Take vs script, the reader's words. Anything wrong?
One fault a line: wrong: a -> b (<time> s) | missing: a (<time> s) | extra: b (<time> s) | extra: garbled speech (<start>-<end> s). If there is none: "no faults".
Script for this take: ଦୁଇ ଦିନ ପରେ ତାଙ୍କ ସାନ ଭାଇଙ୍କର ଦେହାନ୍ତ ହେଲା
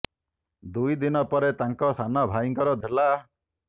missing: ଦେହାନ୍ତ (2.8 s)